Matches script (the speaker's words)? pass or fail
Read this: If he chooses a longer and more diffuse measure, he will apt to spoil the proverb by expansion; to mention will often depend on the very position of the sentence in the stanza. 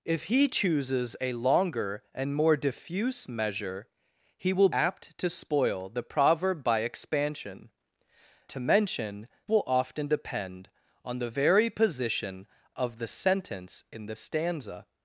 pass